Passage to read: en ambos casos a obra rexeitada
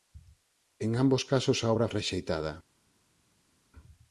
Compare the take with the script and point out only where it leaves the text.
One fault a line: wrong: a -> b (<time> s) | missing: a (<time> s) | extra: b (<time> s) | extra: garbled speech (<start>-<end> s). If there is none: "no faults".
no faults